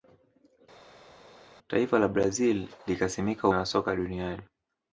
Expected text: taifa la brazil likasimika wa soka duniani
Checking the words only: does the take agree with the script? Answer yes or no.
yes